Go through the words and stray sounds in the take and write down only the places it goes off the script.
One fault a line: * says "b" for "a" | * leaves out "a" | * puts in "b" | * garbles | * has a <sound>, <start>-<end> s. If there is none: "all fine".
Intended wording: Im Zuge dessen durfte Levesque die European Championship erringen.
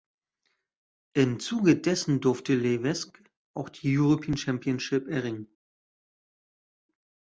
* puts in "auch"